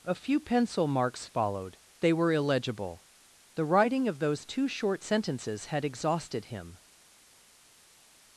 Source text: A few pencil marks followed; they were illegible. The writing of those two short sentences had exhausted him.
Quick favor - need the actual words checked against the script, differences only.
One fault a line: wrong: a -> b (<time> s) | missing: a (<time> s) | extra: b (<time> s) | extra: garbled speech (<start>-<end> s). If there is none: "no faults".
no faults